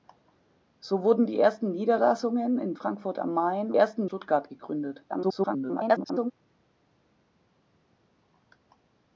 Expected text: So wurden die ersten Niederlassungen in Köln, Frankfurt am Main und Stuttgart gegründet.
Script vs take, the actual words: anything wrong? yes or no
yes